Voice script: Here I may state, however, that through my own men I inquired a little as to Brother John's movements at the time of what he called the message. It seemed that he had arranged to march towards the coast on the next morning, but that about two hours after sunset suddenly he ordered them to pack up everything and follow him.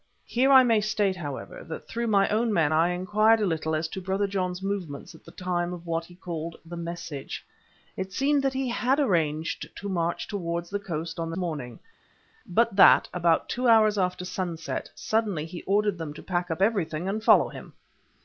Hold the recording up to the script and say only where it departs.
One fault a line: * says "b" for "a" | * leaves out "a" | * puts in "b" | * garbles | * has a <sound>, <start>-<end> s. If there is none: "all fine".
* leaves out "next"